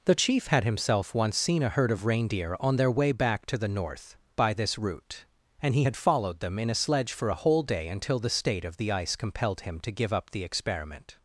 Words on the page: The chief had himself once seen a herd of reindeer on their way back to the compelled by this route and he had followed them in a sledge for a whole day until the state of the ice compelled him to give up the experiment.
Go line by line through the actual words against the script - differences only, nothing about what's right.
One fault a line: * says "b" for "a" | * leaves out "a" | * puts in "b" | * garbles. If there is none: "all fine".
* says "north" for "compelled"